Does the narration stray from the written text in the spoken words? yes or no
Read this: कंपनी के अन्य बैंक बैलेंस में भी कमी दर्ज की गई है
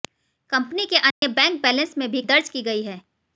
yes